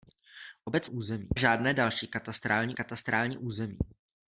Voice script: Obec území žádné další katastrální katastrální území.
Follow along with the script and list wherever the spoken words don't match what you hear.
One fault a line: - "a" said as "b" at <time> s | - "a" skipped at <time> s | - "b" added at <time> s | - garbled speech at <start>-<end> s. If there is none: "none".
none